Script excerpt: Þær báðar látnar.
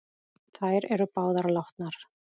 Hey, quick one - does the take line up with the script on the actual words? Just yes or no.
no